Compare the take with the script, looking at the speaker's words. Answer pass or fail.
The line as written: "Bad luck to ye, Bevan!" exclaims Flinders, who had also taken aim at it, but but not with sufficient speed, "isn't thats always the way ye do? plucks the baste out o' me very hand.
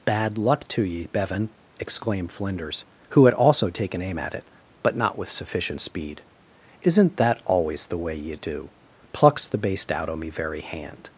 fail